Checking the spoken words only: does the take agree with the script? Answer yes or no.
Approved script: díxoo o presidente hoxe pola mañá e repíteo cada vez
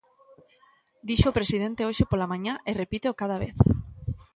yes